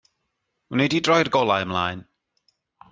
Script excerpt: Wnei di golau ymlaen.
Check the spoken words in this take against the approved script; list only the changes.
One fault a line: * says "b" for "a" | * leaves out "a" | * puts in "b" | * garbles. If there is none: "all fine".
* puts in "droi'r"